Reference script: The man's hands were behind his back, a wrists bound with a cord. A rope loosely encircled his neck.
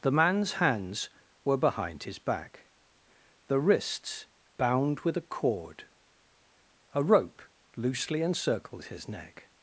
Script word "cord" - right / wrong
right